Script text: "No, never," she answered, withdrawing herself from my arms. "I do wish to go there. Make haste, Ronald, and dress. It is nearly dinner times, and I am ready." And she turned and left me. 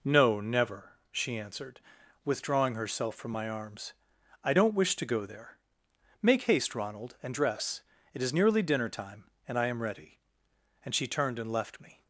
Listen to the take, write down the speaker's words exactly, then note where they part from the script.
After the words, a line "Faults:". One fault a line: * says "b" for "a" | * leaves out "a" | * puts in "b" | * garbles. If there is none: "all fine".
"No, never," she answered, withdrawing herself from my arms. "I don't wish to go there. Make haste, Ronald, and dress. It is nearly dinner time, and I am ready." And she turned and left me.
Faults:
* says "don't" for "do"
* says "time" for "times"